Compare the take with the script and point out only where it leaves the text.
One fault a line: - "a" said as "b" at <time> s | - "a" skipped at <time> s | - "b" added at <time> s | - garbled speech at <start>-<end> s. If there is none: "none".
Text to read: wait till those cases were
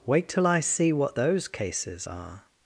- "i see what" added at 0.5 s
- "were" said as "are" at 2.1 s